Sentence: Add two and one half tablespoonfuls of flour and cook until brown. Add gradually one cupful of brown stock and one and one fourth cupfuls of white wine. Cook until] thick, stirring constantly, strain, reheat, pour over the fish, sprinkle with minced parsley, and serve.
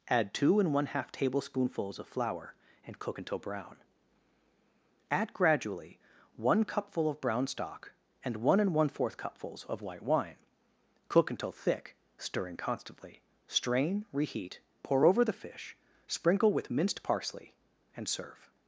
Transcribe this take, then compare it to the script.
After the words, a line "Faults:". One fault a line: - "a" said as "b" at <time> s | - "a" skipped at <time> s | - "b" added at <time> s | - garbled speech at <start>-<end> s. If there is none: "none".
Add two and one half tablespoonfuls of flour and cook until brown. Add gradually one cupful of brown stock and one and one fourth cupfuls of white wine. Cook until] thick, stirring constantly, strain, reheat, pour over the fish, sprinkle with minced parsley, and serve.
Faults:
none